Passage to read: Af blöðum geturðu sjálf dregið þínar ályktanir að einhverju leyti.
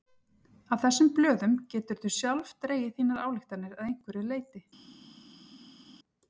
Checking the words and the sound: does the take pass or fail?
fail